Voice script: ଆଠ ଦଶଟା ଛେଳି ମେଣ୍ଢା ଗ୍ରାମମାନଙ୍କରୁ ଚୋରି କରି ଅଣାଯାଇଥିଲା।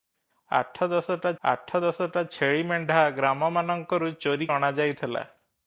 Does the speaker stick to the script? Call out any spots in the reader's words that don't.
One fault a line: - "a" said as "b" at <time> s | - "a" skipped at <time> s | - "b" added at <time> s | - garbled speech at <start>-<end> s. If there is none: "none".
- "ଆଠ ଦଶଟା" added at 1.4 s
- "କରି" skipped at 4.5 s